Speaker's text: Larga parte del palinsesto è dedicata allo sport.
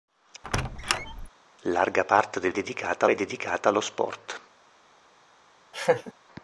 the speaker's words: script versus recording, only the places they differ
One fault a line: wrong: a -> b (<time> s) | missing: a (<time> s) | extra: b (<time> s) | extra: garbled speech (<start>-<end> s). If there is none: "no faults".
wrong: palinsesto -> dedicata (2.5 s)